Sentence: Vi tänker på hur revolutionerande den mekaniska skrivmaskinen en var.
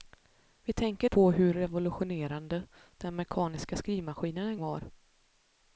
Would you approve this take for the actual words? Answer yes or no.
yes